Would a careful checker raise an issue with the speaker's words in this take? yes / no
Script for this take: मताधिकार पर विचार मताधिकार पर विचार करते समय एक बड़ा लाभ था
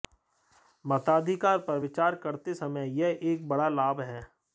yes